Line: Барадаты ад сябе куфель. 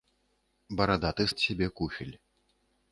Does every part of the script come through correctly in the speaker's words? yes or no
yes